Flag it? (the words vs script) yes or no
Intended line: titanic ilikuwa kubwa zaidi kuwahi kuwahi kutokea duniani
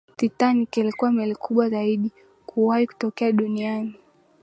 yes